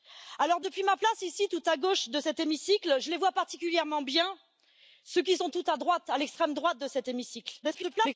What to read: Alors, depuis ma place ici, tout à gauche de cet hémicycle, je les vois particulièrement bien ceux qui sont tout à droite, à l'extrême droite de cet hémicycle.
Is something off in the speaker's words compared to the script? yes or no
yes